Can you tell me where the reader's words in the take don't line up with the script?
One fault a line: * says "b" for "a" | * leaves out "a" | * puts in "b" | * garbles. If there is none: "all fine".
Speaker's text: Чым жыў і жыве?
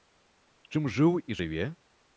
all fine